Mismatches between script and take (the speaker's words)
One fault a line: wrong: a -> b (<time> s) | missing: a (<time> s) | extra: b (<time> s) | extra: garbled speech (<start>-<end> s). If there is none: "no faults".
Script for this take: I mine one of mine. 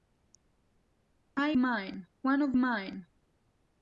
no faults